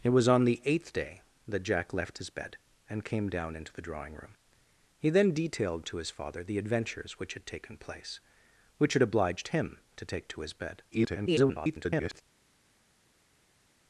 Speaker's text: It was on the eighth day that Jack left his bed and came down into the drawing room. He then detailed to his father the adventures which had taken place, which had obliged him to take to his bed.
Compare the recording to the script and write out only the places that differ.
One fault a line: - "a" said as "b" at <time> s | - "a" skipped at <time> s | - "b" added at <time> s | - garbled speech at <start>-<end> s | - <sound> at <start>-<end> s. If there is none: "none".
- garbled speech at 10.9-12.2 s